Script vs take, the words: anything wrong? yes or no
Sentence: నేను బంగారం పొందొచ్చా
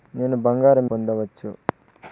no